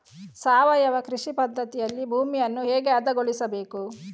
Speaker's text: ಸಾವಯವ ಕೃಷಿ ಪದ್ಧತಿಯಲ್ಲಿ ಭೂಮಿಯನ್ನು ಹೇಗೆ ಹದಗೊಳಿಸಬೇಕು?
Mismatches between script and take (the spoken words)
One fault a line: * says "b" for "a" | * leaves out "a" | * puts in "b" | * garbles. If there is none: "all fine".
all fine